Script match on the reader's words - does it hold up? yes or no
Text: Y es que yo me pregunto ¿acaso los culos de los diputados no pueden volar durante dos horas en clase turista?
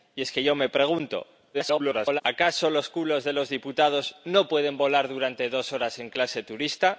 no